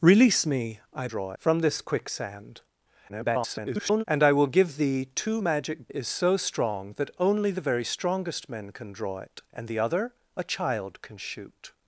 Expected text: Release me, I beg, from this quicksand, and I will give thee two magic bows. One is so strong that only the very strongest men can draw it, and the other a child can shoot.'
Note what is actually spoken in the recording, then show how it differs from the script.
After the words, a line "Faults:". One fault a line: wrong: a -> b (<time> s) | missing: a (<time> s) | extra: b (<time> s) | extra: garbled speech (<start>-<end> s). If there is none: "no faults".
Release me, I draw, from this quicksand, [garbled] and I will give thee two magic is so strong that only the very strongest men can draw it, and the other a child can shoot.'
Faults:
wrong: beg -> draw (1.1 s)
extra: garbled speech (3.1-4.0 s)
missing: bows One (5.9 s)